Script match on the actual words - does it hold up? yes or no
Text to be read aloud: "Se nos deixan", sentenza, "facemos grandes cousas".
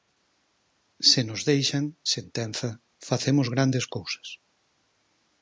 yes